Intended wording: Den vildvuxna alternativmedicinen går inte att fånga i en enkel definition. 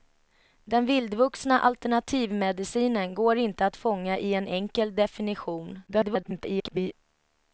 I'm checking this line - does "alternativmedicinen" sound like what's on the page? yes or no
yes